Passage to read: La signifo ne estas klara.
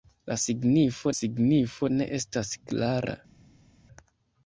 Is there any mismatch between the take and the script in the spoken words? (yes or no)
yes